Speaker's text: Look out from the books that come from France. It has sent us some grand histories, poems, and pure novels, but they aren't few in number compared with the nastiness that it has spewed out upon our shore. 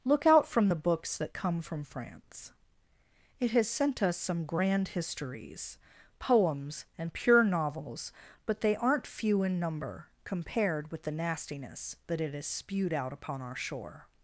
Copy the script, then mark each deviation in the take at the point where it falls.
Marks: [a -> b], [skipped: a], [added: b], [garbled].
Look out from the books that come from France. It has sent us some grand histories, poems, and pure novels, but they aren't few in number compared with the nastiness that it has spewed out upon our shore.